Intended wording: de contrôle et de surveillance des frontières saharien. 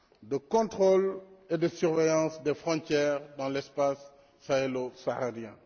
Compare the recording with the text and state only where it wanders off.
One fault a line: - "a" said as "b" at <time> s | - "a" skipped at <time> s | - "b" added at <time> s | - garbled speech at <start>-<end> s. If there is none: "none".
- "dans l'espace sahélo" added at 3.4 s